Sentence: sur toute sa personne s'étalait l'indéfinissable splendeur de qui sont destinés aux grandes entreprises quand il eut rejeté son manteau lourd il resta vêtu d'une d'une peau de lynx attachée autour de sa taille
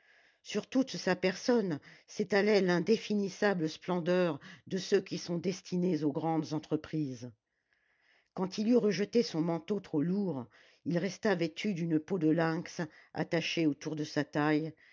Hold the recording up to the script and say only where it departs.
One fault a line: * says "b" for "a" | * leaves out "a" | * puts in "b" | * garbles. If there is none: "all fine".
* puts in "ceux"
* puts in "trop"
* leaves out "d'une"